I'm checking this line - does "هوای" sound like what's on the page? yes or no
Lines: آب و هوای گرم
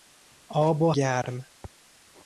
no